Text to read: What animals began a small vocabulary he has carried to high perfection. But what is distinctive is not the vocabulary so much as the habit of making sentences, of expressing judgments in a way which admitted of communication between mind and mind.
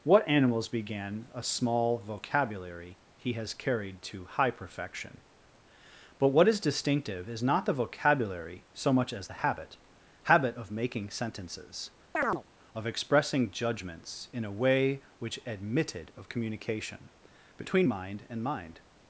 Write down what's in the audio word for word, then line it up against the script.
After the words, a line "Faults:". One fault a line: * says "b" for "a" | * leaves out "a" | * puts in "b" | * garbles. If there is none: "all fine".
What animals began a small vocabulary he has carried to high perfection. But what is distinctive is not the vocabulary so much as the habit habit of making sentences, of expressing judgments in a way which admitted of communication between mind and mind.
Faults:
* puts in "habit"